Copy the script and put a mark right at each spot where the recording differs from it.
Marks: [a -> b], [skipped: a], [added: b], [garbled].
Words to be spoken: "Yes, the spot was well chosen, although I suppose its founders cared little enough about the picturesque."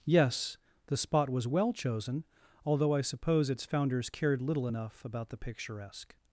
"Yes, the spot was well chosen, although I suppose its founders cared little enough about the picturesque."